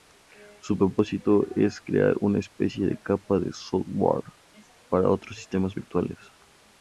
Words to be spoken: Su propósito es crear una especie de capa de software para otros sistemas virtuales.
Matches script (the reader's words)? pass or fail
pass